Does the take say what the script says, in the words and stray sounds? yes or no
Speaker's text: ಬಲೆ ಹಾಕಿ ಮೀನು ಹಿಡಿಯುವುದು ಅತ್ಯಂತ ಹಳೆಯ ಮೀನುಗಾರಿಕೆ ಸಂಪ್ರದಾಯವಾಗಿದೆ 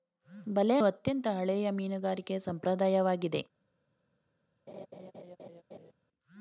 no